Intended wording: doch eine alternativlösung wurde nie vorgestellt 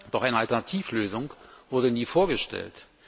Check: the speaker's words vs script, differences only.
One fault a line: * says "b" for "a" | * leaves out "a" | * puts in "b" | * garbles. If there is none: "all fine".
all fine